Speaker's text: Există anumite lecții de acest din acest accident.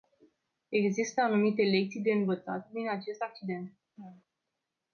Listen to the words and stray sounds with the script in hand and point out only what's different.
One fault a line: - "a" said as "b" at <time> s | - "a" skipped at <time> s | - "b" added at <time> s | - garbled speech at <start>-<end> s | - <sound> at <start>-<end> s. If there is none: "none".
- "acest" said as "învățat" at 2.1 s
- laugh at 4.0-4.2 s